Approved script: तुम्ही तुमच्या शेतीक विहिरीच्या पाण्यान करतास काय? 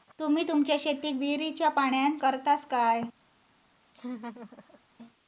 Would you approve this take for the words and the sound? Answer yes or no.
no